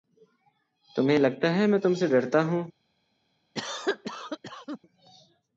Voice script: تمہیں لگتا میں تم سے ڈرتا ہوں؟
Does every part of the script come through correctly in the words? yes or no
no